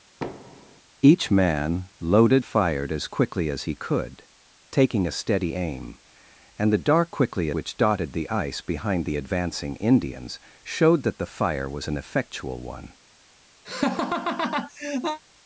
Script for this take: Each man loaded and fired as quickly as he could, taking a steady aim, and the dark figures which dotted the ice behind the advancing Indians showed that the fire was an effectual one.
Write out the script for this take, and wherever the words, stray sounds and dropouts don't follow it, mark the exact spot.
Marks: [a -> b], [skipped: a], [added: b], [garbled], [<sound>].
[thud] Each man loaded [skipped: and] fired as quickly as he could, taking a steady aim, and the dark [figures -> quickly] which dotted the ice behind the advancing Indians showed that the fire was an effectual one. [laugh]